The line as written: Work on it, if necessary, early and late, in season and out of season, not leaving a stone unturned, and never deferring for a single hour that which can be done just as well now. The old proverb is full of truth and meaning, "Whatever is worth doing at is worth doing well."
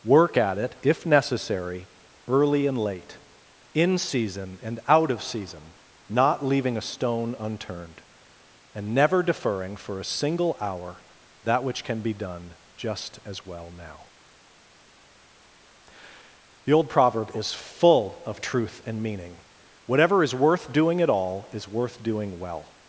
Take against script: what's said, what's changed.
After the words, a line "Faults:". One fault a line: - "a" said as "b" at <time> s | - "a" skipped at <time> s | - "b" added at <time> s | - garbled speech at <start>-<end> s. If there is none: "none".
Work at it, if necessary, early and late, in season and out of season, not leaving a stone unturned, and never deferring for a single hour that which can be done just as well now. The old proverb is full of truth and meaning, "Whatever is worth doing at all, is worth doing well."
Faults:
- "on" said as "at" at 0.4 s
- "all" added at 21.1 s